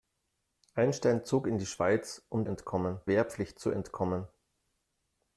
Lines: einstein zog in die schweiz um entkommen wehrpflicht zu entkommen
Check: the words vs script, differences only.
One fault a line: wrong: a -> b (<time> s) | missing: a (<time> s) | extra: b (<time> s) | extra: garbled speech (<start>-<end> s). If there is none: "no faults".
no faults